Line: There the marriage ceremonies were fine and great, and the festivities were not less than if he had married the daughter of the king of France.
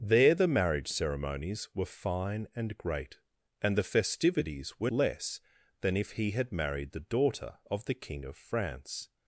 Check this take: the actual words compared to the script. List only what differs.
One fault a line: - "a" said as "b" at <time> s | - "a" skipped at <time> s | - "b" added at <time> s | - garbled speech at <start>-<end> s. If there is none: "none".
- "not" skipped at 4.9 s